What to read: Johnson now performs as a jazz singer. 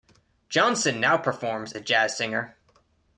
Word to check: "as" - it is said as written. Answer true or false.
false